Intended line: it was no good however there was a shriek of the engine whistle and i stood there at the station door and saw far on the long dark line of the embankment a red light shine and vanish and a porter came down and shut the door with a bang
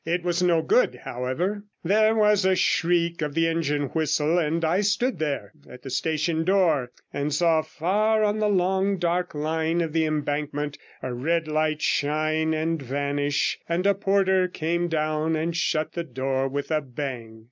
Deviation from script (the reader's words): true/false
false